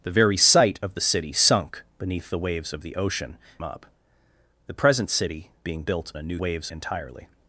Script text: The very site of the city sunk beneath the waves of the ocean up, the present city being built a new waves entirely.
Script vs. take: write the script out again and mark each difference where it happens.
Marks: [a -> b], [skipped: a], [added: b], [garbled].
The very site of the city sunk beneath the waves of the ocean up, the present city being built a new waves entirely.